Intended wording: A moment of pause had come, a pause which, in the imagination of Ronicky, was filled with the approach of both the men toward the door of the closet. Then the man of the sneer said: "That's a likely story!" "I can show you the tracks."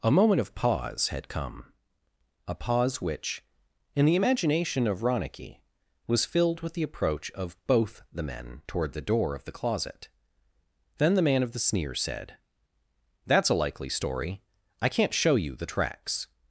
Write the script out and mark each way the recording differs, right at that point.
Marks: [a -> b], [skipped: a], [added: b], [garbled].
A moment of pause had come, a pause which, in the imagination of Ronicky, was filled with the approach of both the men toward the door of the closet. Then the man of the sneer said: "That's a likely story!" "I [can -> can't] show you the tracks."